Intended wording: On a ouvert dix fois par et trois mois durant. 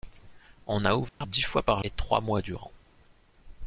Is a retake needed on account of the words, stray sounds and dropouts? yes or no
yes